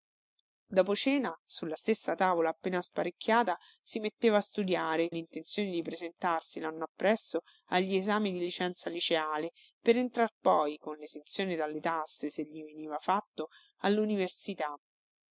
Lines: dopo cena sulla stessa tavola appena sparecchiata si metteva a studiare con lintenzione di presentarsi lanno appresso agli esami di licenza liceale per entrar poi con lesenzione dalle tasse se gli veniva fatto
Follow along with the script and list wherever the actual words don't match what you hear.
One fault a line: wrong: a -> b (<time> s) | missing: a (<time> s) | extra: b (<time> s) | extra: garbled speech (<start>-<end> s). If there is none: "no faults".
missing: con (5.1 s)